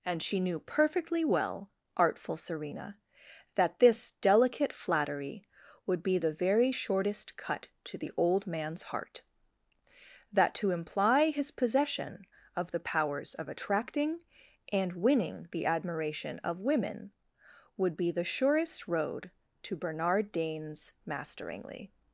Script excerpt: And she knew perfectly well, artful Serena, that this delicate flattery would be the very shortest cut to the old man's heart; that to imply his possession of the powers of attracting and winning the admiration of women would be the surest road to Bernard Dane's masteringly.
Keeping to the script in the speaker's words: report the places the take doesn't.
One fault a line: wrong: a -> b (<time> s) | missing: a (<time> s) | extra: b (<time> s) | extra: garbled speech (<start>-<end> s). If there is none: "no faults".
no faults